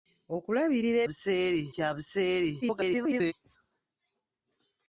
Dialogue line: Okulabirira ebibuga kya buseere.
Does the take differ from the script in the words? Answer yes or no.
yes